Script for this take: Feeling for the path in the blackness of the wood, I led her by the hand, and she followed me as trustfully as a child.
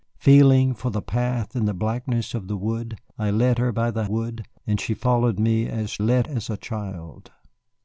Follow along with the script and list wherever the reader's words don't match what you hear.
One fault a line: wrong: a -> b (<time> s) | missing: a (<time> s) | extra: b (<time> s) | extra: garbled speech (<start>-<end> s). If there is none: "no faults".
wrong: hand -> wood (4.0 s)
wrong: trustfully -> led (6.0 s)